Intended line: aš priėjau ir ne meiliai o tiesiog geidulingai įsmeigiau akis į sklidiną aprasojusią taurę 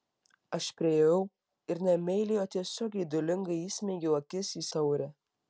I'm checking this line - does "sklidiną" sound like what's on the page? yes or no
no